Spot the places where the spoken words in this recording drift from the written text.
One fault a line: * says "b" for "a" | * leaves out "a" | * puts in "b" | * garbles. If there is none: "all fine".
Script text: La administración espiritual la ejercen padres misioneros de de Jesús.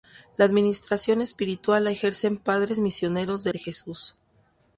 all fine